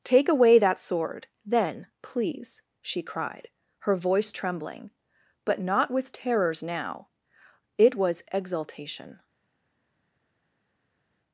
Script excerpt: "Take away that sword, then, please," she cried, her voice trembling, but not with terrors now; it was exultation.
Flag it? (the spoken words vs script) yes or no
no